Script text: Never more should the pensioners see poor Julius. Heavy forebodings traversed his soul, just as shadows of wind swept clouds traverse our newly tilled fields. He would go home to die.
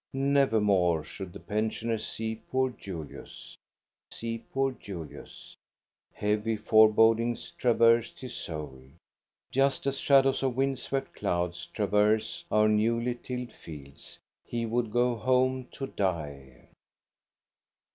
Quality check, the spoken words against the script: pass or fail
fail